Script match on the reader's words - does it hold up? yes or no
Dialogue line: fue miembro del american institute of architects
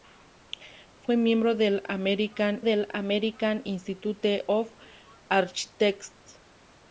no